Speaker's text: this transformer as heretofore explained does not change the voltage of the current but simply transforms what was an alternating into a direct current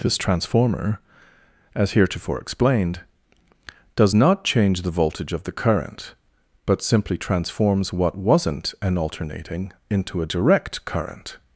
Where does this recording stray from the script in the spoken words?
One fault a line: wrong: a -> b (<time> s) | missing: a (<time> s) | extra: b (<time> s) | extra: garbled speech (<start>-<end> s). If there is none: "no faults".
wrong: was -> wasn't (8.2 s)